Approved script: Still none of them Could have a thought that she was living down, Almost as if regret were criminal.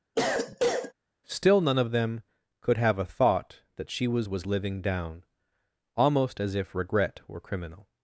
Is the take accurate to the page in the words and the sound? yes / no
no